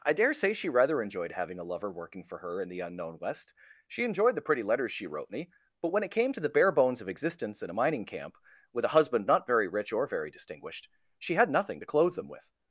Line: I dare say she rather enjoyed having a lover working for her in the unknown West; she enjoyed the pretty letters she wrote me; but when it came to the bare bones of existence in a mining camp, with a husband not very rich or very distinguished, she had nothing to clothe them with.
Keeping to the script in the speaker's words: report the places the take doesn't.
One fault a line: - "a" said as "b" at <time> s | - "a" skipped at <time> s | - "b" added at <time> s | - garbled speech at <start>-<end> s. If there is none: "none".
none